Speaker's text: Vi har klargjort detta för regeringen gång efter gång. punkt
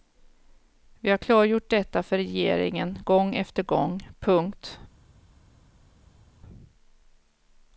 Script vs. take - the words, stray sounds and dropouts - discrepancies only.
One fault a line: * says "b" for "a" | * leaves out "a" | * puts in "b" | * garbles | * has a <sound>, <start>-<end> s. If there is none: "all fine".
all fine